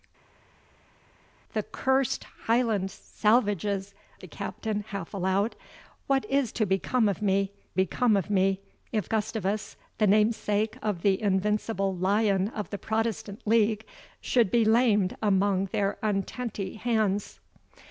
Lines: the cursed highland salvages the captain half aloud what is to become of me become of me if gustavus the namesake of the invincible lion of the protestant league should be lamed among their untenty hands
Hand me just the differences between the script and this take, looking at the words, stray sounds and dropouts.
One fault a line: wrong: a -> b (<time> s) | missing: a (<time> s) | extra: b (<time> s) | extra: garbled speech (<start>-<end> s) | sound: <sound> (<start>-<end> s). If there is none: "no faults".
no faults